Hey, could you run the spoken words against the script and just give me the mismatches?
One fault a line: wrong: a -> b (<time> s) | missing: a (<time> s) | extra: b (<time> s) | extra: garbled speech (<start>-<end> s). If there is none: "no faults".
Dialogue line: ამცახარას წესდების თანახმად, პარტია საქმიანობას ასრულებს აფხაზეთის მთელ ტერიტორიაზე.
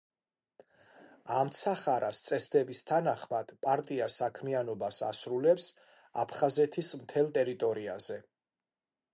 no faults